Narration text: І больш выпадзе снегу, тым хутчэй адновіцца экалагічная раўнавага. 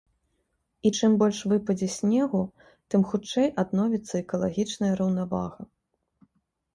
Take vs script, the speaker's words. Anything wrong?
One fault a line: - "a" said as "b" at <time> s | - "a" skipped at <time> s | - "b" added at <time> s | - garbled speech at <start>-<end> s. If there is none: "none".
- "чым" added at 1.0 s